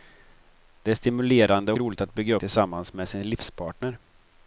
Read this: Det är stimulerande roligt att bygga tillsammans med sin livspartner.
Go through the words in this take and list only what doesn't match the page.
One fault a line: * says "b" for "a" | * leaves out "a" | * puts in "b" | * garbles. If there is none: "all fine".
all fine